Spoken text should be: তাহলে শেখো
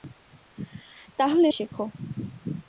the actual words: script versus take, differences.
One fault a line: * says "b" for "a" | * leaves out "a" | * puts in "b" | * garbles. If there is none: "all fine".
all fine